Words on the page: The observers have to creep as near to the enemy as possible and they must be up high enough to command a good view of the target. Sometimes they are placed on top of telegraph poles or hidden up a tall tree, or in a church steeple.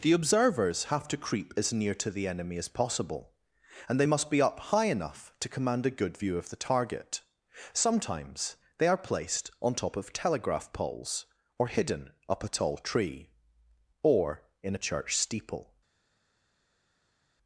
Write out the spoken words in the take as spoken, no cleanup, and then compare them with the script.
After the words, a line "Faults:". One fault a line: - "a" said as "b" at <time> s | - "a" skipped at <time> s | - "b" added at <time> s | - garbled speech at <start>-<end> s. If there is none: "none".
The observers have to creep as near to the enemy as possible and they must be up high enough to command a good view of the target. Sometimes they are placed on top of telegraph poles or hidden up a tall tree, or in a church steeple.
Faults:
none